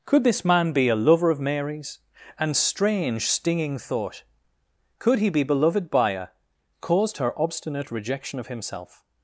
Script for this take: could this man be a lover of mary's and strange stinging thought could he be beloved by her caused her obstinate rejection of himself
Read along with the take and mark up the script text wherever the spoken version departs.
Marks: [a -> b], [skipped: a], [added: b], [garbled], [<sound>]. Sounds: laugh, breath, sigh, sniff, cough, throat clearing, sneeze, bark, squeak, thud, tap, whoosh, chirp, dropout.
could this man be a lover of mary's and strange stinging thought could he be beloved by her caused her obstinate rejection of himself